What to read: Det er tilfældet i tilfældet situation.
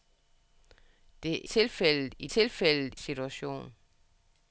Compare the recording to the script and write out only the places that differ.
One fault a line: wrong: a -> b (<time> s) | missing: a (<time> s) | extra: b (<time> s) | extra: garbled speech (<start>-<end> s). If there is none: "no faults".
no faults